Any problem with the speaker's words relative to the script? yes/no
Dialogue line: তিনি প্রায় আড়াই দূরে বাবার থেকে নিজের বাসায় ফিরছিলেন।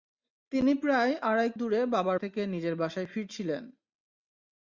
no